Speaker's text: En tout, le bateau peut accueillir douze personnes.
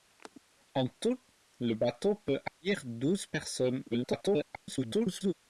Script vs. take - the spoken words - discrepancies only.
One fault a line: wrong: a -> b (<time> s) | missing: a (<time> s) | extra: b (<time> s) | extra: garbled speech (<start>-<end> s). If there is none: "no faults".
extra: garbled speech (3.9-5.3 s)